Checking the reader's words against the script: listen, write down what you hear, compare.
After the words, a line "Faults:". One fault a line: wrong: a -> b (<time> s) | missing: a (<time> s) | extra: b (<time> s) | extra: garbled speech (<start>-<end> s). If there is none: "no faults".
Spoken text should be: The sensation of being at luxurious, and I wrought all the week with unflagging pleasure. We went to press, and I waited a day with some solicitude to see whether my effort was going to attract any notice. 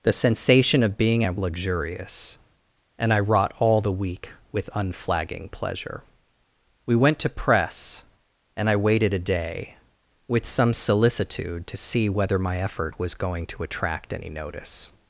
The sensation of being at luxurious, and I wrought all the week with unflagging pleasure. We went to press, and I waited a day with some solicitude to see whether my effort was going to attract any notice.
Faults:
no faults